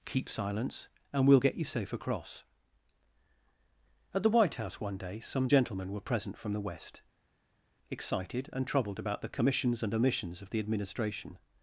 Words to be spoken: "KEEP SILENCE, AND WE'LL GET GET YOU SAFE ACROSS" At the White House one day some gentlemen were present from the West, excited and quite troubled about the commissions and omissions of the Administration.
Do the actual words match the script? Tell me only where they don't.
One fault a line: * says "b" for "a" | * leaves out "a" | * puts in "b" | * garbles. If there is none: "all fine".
* leaves out "GET"
* leaves out "quite"